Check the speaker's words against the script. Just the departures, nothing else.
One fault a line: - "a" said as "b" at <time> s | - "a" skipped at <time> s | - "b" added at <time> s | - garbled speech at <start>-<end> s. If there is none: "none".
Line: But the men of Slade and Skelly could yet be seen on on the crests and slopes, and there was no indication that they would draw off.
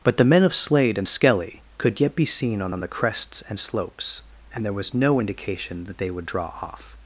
none